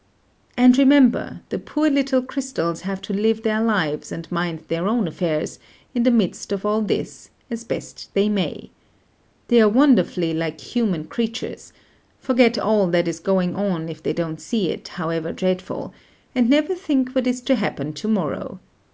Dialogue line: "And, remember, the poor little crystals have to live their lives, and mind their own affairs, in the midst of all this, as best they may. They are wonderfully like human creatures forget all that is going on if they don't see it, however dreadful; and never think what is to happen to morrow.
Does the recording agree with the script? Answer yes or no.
yes